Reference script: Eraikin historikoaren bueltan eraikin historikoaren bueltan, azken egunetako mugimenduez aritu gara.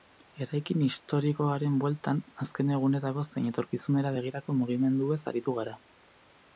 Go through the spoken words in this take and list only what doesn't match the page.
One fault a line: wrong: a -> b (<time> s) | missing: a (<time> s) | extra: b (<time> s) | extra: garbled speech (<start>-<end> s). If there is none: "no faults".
wrong: eraikin historikoaren bueltan azken egunetako -> azken egunetako zein etorkizunera begirako (2.5 s)